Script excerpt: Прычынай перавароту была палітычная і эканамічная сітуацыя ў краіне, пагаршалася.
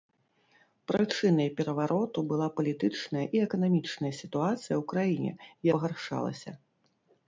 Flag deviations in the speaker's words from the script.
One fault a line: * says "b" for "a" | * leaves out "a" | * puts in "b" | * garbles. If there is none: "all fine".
all fine